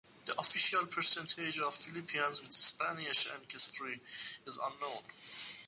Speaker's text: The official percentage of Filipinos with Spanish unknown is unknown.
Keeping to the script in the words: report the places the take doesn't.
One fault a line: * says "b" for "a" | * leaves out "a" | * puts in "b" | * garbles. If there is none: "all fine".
* says "ancestry" for "unknown"